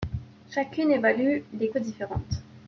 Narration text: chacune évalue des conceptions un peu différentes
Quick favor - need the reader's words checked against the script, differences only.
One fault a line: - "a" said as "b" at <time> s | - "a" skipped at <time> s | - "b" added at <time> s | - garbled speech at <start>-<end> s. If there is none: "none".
- "conceptions un" skipped at 1.7 s